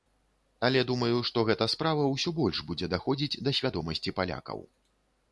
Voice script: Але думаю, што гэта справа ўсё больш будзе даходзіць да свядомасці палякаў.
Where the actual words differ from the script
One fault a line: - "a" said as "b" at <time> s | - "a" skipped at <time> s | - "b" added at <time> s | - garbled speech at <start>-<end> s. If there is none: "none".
none